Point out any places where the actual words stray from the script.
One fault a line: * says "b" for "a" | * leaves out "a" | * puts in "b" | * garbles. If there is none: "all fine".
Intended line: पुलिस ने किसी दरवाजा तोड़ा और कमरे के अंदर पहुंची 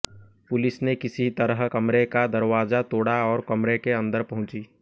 * puts in "तरह कमरे का"